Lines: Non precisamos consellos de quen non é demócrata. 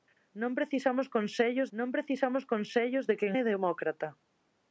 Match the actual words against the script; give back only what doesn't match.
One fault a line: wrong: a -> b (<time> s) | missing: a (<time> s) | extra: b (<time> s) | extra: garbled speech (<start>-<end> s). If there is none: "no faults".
extra: non precisamos consellos (1.8 s)
missing: non (3.3 s)